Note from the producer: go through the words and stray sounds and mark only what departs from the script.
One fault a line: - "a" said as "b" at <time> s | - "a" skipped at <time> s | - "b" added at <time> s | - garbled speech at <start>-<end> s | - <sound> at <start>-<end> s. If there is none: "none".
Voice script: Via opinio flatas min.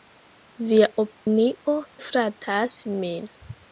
- dropout at 1.1-1.3 s